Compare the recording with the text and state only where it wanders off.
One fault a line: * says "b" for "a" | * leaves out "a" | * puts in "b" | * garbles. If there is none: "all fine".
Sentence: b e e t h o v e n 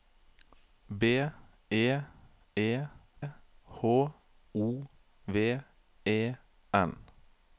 * leaves out "t"